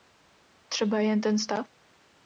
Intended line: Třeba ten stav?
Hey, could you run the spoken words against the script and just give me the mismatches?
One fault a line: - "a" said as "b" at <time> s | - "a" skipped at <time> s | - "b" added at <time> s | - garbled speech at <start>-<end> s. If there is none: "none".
- "jen" added at 1.0 s